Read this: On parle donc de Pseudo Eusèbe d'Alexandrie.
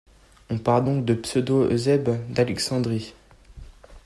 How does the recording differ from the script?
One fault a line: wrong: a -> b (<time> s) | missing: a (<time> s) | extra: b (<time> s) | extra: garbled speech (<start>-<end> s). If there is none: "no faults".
no faults